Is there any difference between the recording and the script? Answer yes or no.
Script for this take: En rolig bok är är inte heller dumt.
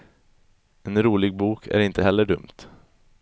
yes